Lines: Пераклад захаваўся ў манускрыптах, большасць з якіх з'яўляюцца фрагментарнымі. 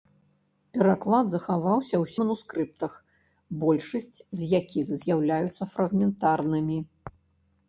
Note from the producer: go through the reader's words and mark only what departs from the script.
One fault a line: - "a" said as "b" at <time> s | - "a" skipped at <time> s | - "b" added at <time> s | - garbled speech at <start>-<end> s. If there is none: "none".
none